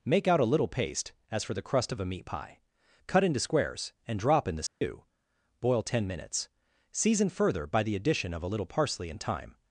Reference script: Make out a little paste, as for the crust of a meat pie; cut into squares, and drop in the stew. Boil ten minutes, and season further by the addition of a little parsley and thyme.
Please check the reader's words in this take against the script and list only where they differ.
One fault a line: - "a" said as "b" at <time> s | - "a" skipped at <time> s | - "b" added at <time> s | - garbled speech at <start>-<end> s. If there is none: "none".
- "and" skipped at 6.5 s